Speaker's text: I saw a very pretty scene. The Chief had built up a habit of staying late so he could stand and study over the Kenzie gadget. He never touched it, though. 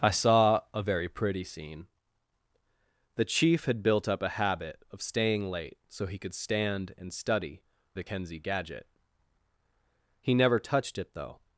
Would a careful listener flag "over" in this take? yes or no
yes